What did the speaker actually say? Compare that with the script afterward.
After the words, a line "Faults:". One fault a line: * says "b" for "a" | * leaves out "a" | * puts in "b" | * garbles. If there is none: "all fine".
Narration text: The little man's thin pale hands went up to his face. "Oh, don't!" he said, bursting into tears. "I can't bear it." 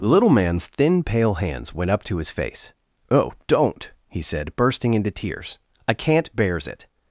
The little man's thin pale hands went up to his face. "Oh, don't!" he said, bursting into tears. "I can't bears it."
Faults:
* says "bears" for "bear"